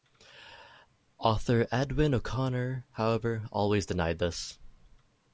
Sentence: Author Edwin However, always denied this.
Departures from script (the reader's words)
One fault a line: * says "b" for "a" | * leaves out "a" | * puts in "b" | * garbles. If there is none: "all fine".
* puts in "O'Connor"